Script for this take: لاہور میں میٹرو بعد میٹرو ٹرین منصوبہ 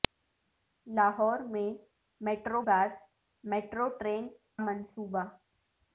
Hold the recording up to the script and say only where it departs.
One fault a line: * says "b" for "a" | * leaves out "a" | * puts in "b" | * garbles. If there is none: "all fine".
all fine